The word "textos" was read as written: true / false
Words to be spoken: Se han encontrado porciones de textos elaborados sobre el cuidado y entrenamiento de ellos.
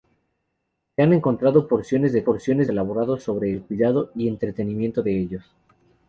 false